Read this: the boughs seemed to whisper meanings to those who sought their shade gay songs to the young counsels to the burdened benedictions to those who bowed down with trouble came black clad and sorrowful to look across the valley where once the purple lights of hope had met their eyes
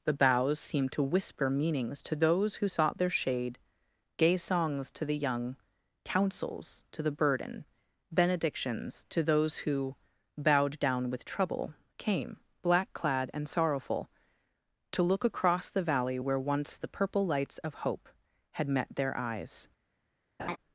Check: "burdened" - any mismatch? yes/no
yes